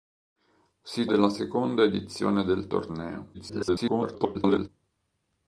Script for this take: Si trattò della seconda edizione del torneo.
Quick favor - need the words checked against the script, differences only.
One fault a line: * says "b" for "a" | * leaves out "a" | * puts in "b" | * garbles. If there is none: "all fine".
* leaves out "trattò"
* garbles